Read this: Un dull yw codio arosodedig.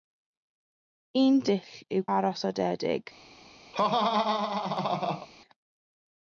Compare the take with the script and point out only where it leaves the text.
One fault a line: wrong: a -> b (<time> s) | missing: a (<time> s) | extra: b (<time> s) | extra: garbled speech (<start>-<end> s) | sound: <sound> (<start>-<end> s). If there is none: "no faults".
missing: codio (2.1 s)
sound: laugh (3.7-5.3 s)